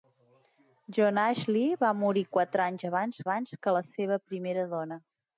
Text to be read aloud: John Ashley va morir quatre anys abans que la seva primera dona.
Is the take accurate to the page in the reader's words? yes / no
no